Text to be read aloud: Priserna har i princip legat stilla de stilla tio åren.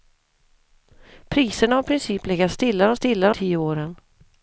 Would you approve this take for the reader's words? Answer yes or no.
yes